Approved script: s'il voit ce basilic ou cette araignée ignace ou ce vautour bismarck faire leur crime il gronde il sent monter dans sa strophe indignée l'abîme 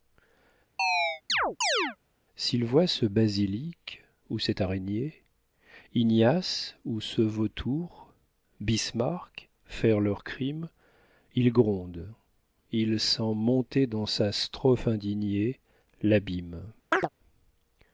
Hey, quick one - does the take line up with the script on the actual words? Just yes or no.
yes